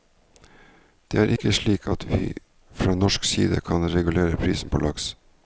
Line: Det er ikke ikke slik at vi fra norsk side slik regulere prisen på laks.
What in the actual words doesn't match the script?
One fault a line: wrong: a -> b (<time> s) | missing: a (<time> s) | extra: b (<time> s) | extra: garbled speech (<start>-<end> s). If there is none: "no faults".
missing: ikke (1.5 s)
wrong: slik -> kan (3.6 s)